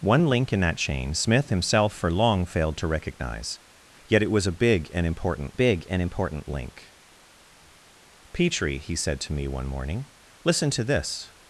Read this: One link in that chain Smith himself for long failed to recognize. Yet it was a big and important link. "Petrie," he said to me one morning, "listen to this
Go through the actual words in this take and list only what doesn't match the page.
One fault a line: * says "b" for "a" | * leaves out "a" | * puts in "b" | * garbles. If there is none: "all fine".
* puts in "big and important"